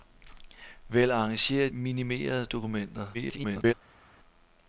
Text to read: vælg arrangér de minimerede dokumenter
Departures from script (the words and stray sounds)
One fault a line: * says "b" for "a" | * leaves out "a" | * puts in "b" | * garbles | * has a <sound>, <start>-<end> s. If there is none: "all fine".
* leaves out "de"
* garbles